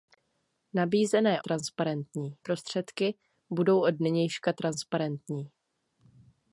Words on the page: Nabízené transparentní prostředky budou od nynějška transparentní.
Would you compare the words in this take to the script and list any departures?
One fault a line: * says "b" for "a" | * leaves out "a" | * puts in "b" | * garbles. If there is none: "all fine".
all fine